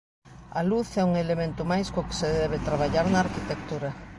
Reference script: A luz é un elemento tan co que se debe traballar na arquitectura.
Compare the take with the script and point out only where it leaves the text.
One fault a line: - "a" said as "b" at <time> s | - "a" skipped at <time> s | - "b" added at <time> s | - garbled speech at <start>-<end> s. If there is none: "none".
- "tan" said as "máis" at 1.7 s